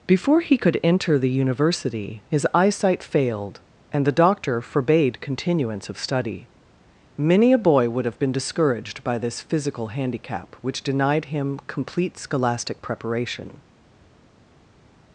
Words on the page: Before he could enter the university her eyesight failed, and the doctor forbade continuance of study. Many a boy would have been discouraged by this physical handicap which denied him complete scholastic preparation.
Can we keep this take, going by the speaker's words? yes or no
no